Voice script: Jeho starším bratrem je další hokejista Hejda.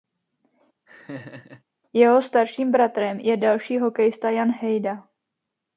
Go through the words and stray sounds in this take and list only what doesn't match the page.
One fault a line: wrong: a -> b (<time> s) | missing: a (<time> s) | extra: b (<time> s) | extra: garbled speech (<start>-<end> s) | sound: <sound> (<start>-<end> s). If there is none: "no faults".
sound: laugh (0.9-1.6 s)
extra: Jan (4.3 s)